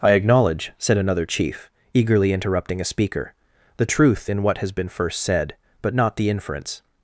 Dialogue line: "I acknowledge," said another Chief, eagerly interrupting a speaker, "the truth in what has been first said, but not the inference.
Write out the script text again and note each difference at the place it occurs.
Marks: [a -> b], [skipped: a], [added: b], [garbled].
"I acknowledge," said another Chief, eagerly interrupting a speaker, "the truth in what has been first said, but not the inference.